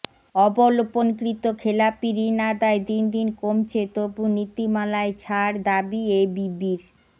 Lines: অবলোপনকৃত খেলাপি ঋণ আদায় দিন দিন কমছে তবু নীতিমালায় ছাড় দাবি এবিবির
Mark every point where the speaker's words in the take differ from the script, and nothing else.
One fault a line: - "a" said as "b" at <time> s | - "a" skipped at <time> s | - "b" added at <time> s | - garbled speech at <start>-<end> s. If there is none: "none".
none